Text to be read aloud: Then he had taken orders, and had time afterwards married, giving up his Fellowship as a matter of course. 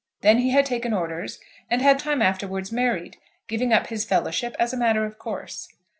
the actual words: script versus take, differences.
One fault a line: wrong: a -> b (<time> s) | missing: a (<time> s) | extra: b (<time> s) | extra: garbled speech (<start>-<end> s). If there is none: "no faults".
no faults